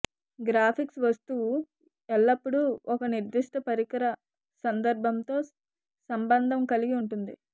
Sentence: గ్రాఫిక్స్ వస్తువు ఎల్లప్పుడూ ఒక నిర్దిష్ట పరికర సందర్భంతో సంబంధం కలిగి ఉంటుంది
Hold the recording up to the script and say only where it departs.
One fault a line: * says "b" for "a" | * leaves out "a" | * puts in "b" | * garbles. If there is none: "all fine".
all fine